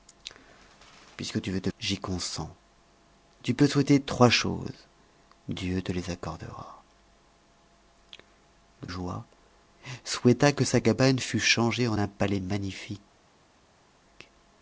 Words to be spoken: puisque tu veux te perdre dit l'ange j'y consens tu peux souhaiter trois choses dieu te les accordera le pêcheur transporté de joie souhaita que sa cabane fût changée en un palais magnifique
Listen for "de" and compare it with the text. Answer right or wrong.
wrong